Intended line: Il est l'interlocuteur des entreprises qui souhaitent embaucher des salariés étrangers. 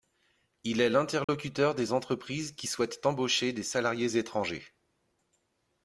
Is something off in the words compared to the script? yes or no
no